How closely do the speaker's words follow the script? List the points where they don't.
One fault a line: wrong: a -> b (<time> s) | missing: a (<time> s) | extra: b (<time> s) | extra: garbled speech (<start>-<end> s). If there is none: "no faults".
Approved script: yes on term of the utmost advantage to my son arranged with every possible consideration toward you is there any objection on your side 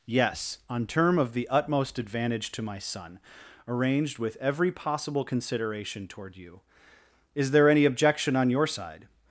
no faults